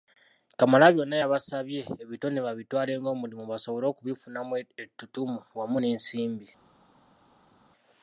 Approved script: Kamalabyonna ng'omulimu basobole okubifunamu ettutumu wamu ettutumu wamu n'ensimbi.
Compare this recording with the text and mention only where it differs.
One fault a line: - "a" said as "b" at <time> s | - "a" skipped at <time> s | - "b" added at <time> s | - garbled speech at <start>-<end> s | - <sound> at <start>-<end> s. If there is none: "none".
- "yabasabye ebitone babitwale" added at 1.2 s
- "ettutumu wamu" skipped at 5.8 s